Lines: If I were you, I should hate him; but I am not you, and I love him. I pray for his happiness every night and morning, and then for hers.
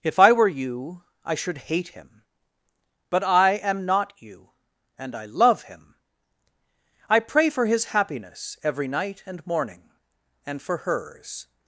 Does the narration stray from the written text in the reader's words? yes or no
yes